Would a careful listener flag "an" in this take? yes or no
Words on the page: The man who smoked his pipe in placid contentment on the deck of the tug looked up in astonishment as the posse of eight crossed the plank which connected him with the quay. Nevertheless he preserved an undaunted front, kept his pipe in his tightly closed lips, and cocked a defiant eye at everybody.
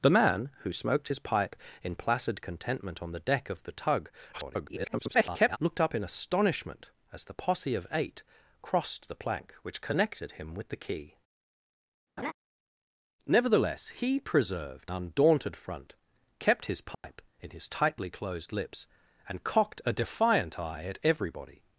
yes